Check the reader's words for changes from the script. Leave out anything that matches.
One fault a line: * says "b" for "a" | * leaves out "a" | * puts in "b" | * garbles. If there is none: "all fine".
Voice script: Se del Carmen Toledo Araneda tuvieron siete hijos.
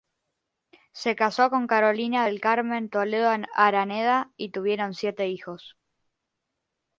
* puts in "casó con Carolina"
* puts in "y"